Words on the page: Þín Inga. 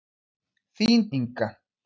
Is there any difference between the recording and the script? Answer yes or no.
no